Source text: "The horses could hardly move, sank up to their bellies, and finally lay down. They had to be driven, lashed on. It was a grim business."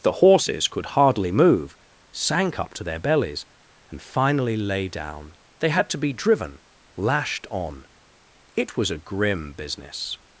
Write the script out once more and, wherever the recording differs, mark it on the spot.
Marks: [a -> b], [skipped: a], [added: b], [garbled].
"The horses could hardly move, sank up to their bellies, and finally lay down. They had to be driven, lashed on. It was a grim business."